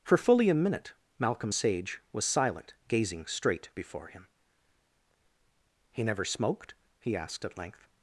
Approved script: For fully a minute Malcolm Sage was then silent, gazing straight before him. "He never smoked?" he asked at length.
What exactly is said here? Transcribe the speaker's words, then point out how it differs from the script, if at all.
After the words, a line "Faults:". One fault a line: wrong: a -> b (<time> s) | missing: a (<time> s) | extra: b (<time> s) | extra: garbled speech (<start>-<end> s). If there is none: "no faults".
For fully a minute Malcolm Sage was silent, gazing straight before him. "He never smoked?" he asked at length.
Faults:
missing: then (2.2 s)